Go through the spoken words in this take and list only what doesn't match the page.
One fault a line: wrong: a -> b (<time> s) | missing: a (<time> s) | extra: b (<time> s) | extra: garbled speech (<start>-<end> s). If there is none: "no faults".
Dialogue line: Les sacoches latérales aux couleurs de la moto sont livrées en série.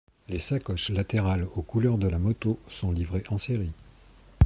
no faults